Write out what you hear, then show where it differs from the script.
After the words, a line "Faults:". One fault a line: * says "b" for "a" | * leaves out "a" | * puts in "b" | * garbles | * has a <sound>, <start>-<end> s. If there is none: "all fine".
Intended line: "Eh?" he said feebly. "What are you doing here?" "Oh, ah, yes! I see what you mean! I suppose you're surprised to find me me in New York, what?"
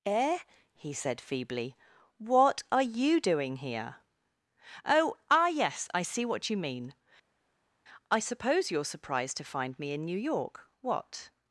"Eh?" he said feebly. "What are you doing here?" "Oh, ah, yes! I see what you mean! I suppose you're surprised to find me in New York, what?"
Faults:
* leaves out "me"